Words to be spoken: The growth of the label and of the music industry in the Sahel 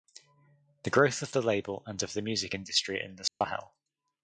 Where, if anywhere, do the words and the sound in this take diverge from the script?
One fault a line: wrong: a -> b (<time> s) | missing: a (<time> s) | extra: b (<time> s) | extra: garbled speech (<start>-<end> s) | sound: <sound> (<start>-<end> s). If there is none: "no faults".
sound: dropout (3.3-3.4 s)